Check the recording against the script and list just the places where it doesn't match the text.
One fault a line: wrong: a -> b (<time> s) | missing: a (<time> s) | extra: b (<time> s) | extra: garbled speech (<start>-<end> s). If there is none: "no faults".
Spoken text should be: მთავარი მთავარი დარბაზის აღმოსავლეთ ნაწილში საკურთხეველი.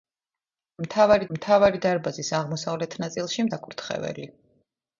no faults